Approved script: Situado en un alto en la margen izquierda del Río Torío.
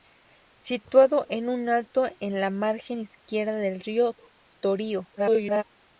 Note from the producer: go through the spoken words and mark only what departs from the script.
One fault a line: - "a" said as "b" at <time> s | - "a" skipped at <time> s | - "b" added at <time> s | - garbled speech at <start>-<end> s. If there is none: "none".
- garbled speech at 5.2-5.6 s